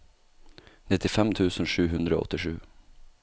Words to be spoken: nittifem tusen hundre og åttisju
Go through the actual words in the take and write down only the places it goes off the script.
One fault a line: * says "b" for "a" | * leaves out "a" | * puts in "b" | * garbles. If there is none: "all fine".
* puts in "sju"